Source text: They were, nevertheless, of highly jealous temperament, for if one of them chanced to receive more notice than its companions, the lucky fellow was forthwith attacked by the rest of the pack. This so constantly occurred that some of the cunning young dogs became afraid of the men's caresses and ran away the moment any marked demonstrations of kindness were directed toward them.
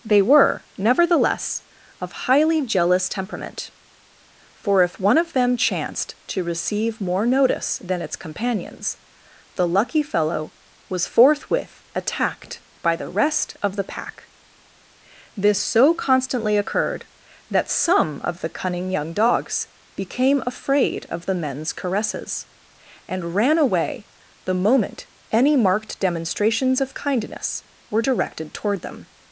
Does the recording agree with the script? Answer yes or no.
yes